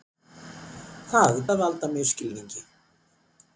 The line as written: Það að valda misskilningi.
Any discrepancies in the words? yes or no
no